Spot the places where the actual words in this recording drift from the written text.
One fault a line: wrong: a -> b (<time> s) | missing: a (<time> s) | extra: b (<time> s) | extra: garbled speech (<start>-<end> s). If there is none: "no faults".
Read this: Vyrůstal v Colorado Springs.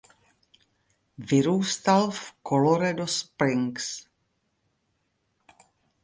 no faults